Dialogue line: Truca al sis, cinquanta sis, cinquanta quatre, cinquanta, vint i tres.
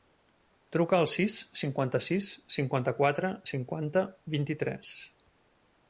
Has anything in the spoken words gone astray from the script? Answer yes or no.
no